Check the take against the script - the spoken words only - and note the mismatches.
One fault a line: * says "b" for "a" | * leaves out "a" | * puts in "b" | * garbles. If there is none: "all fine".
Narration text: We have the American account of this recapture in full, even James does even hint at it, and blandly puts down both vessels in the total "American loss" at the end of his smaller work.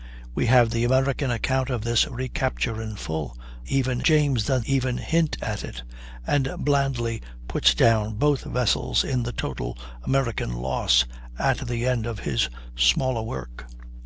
all fine